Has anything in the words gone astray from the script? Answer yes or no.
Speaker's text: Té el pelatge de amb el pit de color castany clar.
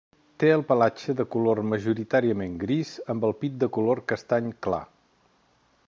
yes